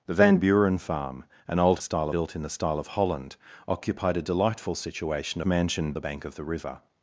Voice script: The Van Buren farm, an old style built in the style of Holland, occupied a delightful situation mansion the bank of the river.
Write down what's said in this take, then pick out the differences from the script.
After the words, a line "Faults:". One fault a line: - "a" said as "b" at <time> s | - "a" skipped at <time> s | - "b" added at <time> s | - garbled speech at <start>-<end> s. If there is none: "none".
The Van Buren farm, an old style built in the style of Holland, occupied a delightful situation mansion the bank of the river.
Faults:
none